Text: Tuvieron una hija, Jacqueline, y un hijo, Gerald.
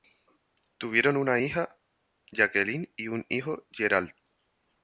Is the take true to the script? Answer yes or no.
yes